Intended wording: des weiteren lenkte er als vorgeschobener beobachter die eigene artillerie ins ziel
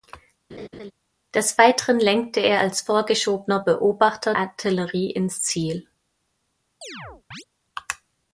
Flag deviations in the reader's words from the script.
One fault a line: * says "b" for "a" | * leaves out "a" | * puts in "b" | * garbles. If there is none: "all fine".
* leaves out "die eigene"